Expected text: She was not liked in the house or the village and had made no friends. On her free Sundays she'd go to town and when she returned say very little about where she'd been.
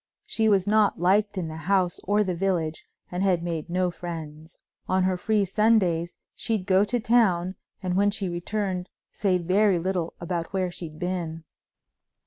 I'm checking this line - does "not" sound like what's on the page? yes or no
yes